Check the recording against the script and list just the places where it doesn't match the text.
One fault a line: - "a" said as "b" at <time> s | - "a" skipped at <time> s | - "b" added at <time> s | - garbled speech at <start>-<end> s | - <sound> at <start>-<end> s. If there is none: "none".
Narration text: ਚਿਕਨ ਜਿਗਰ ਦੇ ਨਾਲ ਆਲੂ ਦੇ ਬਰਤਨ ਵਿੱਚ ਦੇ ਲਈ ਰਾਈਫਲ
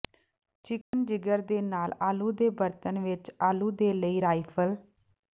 - dropout at 0.8-0.9 s
- "ਆਲੂ" added at 3.4 s